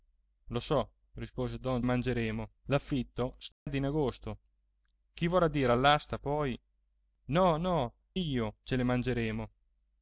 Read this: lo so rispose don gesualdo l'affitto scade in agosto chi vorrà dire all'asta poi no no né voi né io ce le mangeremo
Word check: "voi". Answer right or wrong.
wrong